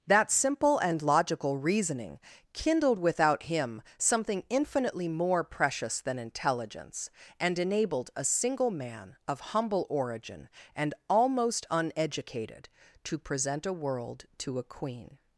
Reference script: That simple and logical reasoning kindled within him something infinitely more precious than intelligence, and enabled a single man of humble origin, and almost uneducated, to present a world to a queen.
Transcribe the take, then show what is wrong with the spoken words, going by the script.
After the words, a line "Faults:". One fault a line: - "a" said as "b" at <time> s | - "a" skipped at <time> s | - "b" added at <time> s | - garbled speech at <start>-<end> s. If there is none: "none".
That simple and logical reasoning kindled without him something infinitely more precious than intelligence, and enabled a single man of humble origin, and almost uneducated, to present a world to a queen.
Faults:
- "within" said as "without" at 3.0 s